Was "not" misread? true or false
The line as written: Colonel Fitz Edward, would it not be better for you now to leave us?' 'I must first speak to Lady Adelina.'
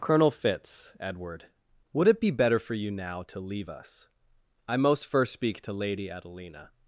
true